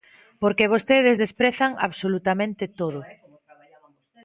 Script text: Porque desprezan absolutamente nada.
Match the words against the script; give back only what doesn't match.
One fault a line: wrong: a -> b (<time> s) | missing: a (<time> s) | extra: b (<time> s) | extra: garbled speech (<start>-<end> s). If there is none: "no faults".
extra: vostedes (0.7 s)
wrong: nada -> todo (2.7 s)